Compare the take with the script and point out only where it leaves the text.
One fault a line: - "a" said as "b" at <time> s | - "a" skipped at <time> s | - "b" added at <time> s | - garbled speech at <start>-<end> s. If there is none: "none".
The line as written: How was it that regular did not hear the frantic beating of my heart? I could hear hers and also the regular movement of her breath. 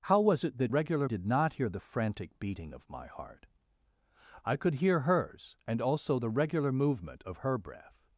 none